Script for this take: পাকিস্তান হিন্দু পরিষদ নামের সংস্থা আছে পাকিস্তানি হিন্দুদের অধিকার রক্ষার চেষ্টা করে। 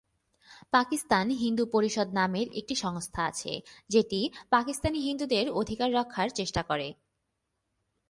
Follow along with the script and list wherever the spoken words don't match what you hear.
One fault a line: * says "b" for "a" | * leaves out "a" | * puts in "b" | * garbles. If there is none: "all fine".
* puts in "একটি"
* puts in "যেটি"